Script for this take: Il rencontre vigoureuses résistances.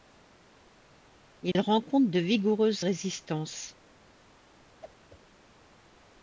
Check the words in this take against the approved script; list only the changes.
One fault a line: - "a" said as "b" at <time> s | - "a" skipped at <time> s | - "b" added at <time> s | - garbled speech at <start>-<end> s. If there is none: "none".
- "de" added at 2.1 s